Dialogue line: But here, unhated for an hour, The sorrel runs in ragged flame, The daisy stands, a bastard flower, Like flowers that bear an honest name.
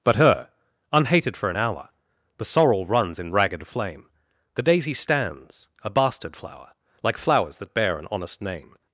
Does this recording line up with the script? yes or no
no